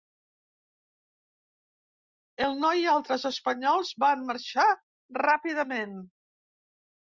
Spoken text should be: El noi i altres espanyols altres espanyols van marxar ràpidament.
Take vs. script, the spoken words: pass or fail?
fail